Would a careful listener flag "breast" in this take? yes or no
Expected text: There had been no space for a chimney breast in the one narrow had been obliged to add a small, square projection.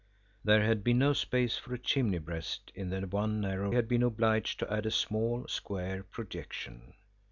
no